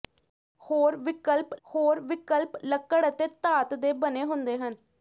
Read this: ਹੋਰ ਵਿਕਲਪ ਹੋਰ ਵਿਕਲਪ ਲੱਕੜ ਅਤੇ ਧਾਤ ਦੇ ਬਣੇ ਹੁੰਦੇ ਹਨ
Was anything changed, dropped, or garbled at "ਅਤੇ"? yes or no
no